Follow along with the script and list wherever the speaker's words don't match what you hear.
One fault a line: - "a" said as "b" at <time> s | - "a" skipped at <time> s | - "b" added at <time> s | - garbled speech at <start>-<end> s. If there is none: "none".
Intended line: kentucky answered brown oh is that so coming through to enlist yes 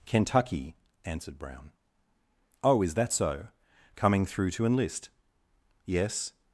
none